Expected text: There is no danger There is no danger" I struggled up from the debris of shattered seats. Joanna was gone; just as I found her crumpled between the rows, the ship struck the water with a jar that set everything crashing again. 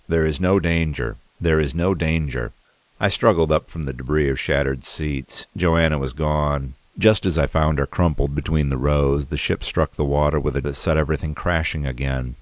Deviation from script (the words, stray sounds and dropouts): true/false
true